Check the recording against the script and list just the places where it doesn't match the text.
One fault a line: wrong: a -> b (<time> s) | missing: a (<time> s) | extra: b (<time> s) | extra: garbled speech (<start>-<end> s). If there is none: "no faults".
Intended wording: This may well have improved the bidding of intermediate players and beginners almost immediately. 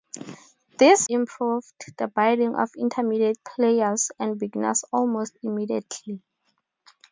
missing: may well have (1.1 s)